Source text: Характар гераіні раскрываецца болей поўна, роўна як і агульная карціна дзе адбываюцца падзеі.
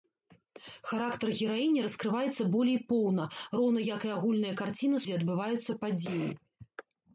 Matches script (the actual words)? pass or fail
pass